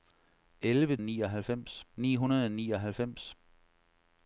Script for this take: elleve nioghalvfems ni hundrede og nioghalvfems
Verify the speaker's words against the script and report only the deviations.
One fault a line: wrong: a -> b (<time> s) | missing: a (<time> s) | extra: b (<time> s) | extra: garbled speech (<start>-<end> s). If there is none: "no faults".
no faults